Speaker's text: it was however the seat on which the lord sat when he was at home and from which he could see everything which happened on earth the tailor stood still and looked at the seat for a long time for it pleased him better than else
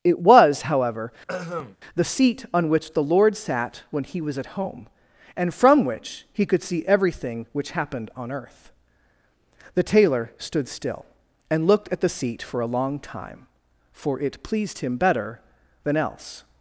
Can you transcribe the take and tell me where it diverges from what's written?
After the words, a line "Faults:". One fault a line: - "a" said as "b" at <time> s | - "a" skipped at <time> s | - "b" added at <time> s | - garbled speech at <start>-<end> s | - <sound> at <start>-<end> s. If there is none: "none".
it was however the seat on which the lord sat when he was at home and from which he could see everything which happened on earth the tailor stood still and looked at the seat for a long time for it pleased him better than else
Faults:
- throat clearing at 1.3-1.8 s